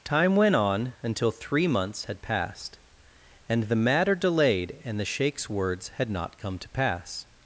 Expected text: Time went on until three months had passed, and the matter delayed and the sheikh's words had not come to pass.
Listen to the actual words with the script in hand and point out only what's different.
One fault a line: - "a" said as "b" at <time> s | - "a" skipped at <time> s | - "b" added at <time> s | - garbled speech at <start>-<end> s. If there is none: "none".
none